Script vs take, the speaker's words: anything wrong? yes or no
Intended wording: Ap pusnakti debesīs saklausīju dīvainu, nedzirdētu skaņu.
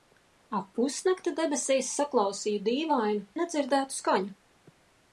no